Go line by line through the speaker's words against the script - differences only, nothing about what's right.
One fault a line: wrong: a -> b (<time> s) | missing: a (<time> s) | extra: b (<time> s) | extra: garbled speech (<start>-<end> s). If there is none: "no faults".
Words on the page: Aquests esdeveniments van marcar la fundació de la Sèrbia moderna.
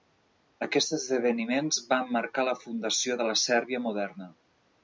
no faults